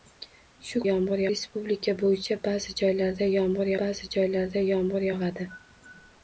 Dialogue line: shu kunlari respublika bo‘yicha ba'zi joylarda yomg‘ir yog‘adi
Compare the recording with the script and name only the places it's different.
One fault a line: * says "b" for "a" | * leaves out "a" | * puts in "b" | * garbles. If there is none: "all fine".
* says "yomg‘ir" for "kunlari"
* puts in "ba'zi joylarda yomg‘ir"